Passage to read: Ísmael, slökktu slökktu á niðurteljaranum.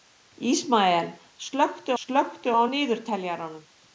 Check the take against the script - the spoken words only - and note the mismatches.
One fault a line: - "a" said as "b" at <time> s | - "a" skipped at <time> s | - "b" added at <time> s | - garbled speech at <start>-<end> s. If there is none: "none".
none